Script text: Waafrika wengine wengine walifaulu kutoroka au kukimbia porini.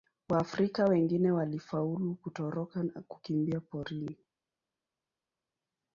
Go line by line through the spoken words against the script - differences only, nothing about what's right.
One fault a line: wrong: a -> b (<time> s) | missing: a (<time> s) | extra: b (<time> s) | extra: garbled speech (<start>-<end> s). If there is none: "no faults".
missing: wengine (1.3 s)
wrong: au -> na (2.8 s)